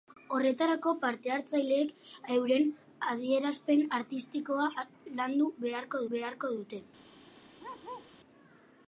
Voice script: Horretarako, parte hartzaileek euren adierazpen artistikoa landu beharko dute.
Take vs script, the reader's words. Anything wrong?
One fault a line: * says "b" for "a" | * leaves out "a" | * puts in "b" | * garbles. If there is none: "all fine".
* puts in "beharko"